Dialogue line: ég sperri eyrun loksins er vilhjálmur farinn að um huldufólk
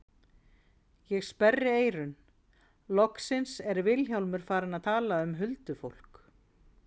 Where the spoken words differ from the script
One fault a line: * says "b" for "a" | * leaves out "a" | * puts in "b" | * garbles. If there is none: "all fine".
* puts in "tala"